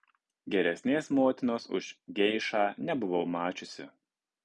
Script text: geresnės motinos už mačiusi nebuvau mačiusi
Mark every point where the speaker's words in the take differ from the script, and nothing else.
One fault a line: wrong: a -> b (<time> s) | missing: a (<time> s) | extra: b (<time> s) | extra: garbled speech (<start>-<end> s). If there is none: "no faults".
wrong: mačiusi -> geišą (2.2 s)